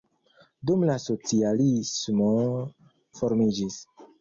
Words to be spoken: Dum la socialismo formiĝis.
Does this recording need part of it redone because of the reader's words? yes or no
no